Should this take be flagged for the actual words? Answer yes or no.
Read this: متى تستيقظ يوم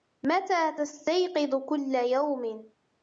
yes